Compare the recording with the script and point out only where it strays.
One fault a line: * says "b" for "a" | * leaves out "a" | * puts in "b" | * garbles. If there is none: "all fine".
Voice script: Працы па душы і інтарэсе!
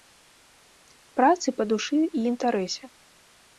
all fine